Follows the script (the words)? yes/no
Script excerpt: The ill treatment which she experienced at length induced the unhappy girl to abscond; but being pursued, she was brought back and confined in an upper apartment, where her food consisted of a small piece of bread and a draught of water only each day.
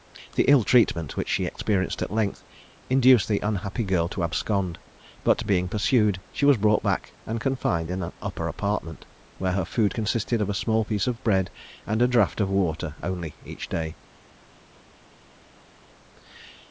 yes